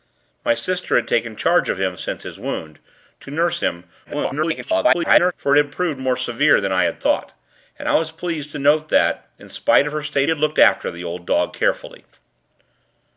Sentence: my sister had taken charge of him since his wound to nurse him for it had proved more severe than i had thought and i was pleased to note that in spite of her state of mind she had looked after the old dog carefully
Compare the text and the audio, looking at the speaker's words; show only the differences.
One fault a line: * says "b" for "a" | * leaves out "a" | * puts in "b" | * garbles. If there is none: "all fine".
* garbles
* leaves out "of mind she"